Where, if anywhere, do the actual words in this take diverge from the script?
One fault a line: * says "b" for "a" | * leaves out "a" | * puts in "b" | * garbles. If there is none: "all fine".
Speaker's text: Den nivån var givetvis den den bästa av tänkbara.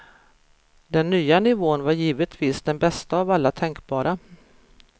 * puts in "nya"
* leaves out "den"
* puts in "alla"